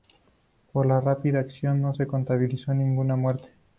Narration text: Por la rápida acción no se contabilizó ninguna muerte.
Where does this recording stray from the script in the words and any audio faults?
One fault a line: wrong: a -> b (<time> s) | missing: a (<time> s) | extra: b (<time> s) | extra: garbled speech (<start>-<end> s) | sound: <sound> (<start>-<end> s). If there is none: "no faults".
no faults